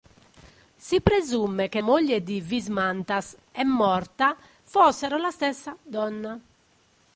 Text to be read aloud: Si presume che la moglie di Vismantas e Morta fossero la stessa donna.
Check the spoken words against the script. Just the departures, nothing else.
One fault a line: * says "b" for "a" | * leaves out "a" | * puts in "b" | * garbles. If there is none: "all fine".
* leaves out "la"